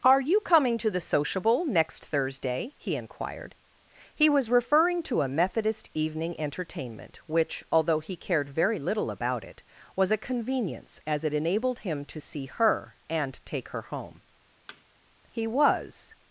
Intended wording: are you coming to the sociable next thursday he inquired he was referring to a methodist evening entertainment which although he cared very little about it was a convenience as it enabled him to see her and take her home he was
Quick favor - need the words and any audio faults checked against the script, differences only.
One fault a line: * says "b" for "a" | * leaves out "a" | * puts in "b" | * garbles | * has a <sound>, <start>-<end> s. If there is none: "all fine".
* has a thud, 14.7-14.8 s